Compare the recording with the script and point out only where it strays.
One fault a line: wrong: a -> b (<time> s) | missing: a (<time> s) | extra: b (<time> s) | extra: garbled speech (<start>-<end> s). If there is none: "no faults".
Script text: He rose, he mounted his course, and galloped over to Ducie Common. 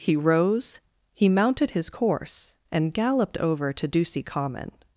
no faults